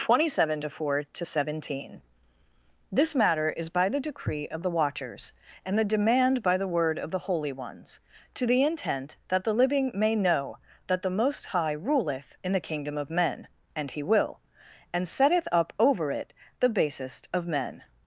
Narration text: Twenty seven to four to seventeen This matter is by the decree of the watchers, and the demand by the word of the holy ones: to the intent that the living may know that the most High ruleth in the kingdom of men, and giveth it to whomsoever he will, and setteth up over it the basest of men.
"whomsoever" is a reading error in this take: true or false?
true